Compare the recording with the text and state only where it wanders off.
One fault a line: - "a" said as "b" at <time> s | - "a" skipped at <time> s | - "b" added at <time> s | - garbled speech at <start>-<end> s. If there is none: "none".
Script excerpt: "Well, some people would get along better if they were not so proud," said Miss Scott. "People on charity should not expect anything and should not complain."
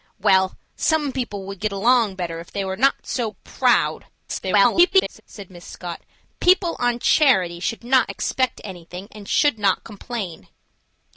- garbled speech at 4.3-5.2 s